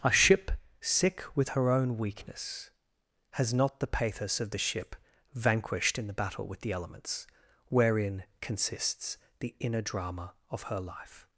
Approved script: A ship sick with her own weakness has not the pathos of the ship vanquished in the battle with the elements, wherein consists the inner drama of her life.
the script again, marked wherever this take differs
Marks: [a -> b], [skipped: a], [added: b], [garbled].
A ship sick with her own weakness has not the pathos of the ship vanquished in the battle with the elements, wherein consists the inner drama of her life.